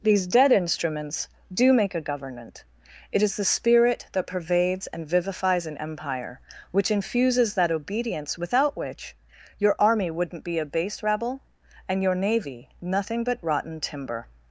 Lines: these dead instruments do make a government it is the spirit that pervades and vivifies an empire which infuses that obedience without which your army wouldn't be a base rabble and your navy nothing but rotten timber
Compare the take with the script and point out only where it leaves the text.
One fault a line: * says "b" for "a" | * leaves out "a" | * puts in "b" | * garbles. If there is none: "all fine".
all fine